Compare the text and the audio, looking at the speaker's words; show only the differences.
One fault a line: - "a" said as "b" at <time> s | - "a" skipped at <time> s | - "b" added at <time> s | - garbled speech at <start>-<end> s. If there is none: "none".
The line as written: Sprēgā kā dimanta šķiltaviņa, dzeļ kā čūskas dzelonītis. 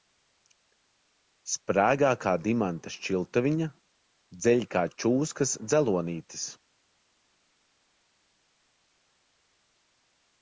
none